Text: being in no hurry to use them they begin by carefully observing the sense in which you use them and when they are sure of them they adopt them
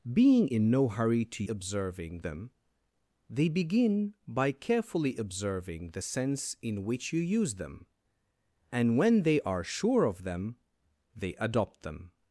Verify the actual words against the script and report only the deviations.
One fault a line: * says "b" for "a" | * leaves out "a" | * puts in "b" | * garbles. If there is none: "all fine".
* says "observing" for "use"